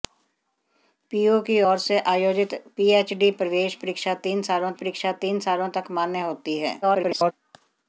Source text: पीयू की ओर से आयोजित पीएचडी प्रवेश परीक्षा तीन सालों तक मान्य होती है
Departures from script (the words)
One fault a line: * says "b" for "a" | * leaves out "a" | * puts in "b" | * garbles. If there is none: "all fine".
* puts in "परीक्षा तीन सालों"
* garbles